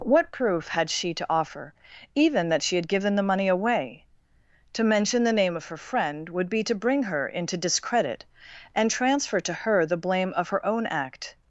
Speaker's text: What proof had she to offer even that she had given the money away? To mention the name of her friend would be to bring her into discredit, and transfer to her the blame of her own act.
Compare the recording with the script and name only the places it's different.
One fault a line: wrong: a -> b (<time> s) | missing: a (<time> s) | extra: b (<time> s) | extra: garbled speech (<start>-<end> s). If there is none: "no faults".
no faults